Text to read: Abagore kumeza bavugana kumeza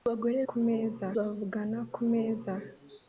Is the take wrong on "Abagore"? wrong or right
right